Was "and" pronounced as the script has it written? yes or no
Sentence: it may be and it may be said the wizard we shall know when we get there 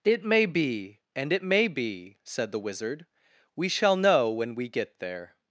yes